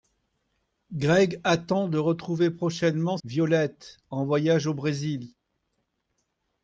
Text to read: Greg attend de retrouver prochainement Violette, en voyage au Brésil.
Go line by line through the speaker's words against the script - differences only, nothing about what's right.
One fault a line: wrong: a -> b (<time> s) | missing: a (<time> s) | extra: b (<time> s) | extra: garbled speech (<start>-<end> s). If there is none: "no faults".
no faults